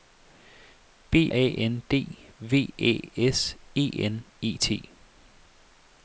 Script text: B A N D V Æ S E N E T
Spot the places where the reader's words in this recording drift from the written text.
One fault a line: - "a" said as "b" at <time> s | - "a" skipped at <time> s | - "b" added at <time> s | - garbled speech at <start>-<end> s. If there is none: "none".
none